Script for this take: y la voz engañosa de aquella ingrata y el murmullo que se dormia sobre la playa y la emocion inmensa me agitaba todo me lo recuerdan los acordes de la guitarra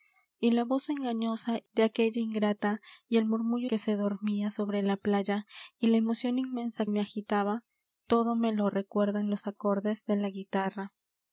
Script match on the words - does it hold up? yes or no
yes